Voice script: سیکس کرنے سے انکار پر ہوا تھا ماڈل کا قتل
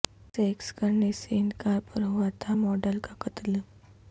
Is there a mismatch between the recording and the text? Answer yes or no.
no